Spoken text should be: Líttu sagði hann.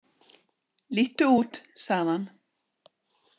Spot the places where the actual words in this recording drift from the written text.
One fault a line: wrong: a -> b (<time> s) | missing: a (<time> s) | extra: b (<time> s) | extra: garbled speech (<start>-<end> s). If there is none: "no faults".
extra: út (1.4 s)